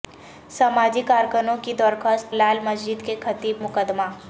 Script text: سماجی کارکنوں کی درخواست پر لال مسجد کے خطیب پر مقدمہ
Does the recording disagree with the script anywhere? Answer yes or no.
yes